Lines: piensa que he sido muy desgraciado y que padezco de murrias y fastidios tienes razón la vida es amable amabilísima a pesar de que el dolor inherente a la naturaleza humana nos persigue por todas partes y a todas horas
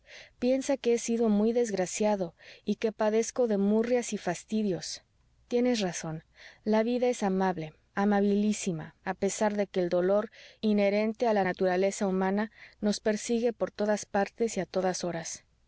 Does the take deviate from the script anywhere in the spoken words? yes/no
no